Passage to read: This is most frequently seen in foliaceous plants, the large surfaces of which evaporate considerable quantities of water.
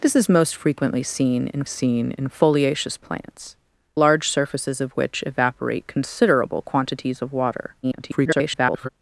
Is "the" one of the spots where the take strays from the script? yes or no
yes